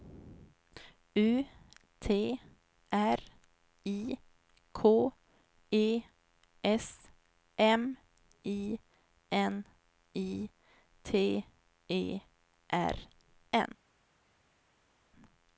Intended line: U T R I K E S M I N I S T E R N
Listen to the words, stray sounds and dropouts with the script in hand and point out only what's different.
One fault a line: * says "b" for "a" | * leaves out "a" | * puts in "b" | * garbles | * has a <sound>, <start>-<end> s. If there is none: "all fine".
* leaves out "S"